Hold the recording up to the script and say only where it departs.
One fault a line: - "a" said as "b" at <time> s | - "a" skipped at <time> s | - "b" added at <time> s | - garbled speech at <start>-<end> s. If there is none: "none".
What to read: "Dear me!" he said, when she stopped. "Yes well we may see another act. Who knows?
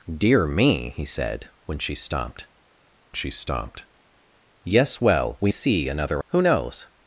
- "she stopped" added at 3.1 s
- "may" skipped at 5.5 s
- "act" skipped at 6.2 s